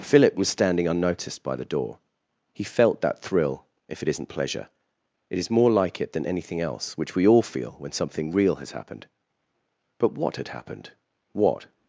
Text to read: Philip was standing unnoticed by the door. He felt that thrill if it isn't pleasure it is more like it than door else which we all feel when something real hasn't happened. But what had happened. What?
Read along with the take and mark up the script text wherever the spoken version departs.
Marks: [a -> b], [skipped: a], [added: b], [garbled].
Philip was standing unnoticed by the door. He felt that thrill if it isn't pleasure it is more like it than [door -> anything] else which we all feel when something real [hasn't -> has] happened. But what had happened. What?